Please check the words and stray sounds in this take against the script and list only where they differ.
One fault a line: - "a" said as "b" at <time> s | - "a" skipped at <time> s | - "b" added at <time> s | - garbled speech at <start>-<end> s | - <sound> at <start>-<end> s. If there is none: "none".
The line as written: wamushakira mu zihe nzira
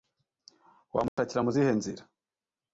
- dropout at 1.1-1.2 s